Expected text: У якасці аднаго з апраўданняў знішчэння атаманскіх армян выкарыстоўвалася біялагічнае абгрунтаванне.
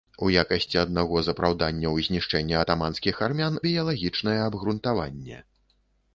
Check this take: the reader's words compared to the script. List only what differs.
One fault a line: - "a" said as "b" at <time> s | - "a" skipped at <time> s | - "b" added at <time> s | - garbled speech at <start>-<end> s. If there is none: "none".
- "выкарыстоўвалася" skipped at 3.6 s